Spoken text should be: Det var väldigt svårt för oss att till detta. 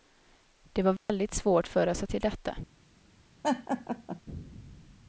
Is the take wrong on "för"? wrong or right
right